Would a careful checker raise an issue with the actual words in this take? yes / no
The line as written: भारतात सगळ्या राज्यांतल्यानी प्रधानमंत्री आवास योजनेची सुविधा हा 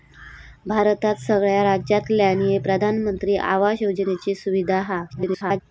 yes